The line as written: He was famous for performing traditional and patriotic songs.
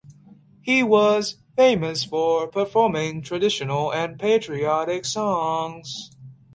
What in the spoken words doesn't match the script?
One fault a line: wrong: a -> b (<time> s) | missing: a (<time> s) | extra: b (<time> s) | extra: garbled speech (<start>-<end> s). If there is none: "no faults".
no faults